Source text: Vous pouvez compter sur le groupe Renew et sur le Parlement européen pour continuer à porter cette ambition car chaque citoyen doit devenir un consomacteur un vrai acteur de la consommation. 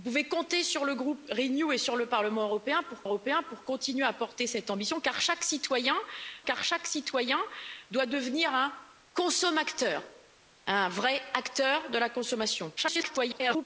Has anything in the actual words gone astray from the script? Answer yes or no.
yes